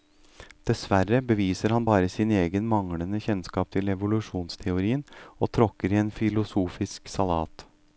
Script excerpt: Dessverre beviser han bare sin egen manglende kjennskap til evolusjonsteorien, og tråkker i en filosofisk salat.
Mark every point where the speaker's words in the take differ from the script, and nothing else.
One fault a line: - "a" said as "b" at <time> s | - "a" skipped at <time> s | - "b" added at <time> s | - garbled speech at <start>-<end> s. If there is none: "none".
none